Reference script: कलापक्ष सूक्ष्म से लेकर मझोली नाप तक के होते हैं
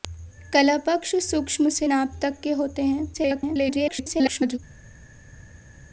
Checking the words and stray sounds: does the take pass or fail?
fail